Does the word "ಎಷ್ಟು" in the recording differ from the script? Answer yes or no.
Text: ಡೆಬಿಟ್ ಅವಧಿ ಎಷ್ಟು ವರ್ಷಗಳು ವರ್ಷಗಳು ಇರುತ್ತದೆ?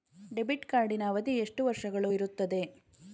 no